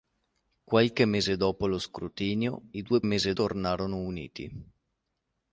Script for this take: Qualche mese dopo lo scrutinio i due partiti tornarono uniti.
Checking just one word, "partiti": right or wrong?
wrong